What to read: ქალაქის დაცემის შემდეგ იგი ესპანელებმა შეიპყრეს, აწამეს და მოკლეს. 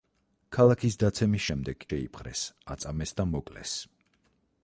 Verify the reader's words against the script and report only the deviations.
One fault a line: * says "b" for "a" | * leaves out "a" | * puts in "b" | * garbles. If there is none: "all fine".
* leaves out "იგი ესპანელებმა"